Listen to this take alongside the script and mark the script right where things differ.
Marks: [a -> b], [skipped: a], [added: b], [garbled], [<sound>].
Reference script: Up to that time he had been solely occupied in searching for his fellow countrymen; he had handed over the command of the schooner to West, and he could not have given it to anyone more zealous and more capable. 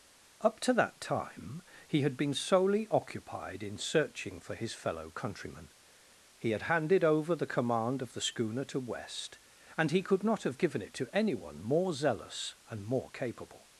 Up to that time he had been solely occupied in searching for his fellow countrymen; he had handed over the command of the schooner to West, and he could not have given it to anyone more zealous and more capable.